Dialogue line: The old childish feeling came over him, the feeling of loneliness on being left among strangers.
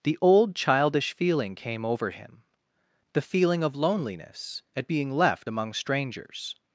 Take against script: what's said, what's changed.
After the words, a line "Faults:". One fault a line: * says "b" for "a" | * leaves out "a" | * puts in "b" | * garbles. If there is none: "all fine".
The old childish feeling came over him, the feeling of loneliness at being left among strangers.
Faults:
* says "at" for "on"